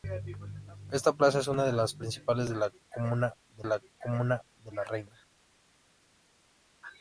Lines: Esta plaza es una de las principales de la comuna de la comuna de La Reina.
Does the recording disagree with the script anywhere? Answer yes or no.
no